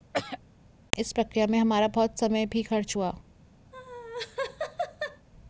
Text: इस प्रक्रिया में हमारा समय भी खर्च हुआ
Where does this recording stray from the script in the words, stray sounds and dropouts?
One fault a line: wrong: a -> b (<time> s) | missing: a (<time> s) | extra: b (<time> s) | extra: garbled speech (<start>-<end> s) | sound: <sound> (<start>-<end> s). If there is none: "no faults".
sound: throat clearing (0.1-0.4 s)
extra: बहुत (1.9 s)
sound: laugh (3.7-5.3 s)